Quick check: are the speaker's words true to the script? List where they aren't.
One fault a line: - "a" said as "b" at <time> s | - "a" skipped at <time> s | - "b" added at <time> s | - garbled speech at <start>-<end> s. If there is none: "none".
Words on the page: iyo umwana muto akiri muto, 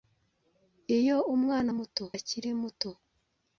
none